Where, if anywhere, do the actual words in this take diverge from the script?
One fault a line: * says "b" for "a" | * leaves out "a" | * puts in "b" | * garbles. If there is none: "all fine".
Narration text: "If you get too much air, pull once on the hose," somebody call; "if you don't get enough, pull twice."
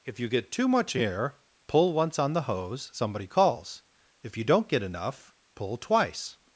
* says "calls" for "call"